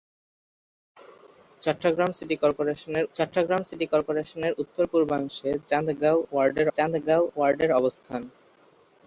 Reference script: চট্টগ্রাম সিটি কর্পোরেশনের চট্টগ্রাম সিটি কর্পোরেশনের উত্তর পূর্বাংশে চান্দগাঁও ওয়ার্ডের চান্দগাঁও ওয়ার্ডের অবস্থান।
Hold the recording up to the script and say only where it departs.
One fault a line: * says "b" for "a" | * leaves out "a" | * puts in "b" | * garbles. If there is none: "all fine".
all fine